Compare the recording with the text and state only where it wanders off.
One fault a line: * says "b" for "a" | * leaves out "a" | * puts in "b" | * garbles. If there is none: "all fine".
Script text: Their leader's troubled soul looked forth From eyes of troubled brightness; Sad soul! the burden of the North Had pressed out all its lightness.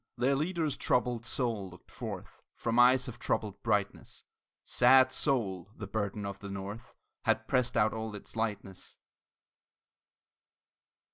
all fine